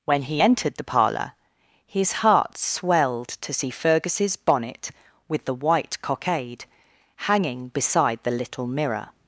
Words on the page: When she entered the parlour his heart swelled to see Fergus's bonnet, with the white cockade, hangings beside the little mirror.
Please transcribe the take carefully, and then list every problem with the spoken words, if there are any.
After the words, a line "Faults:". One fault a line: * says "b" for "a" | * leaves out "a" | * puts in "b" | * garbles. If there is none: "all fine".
When he entered the parlour his heart swelled to see Fergus's bonnet, with the white cockade, hanging beside the little mirror.
Faults:
* says "he" for "she"
* says "hanging" for "hangings"